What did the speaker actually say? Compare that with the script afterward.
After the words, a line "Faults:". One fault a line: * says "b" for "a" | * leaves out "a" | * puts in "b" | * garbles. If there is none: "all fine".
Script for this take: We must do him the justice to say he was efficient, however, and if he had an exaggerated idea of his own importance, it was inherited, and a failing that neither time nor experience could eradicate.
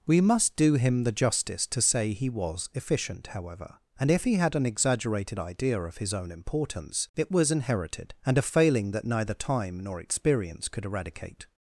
We must do him the justice to say he was efficient, however, and if he had an exaggerated idea of his own importance, it was inherited, and a failing that neither time nor experience could eradicate.
Faults:
all fine